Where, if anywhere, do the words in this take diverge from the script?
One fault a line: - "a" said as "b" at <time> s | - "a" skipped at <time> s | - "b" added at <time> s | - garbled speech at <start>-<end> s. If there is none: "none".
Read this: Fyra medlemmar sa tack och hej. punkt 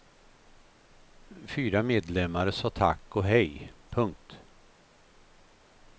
none